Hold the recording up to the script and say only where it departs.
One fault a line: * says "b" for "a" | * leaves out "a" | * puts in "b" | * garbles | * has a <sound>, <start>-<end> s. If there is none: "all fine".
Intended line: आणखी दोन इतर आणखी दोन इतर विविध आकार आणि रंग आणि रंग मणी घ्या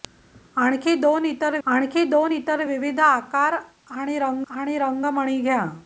all fine